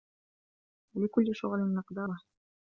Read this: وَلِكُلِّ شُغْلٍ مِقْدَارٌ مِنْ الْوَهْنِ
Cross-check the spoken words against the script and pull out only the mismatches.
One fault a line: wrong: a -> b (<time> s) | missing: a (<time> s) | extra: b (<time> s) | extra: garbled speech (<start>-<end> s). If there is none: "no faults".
missing: مِنْ (2.1 s)